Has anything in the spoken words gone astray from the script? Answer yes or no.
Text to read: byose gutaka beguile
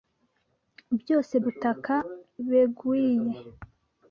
no